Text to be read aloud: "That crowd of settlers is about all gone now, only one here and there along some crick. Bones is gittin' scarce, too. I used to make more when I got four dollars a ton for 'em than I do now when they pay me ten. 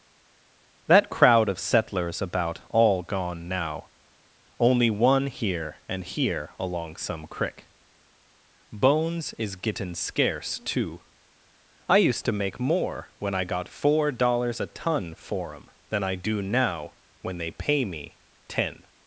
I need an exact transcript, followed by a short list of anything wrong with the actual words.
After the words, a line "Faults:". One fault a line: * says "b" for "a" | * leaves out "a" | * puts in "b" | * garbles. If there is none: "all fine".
"That crowd of settlers about all gone now, only one here and here along some crick. Bones is gittin' scarce, too. I used to make more when I got four dollars a ton for 'em than I do now when they pay me ten.
Faults:
* leaves out "is"
* says "here" for "there"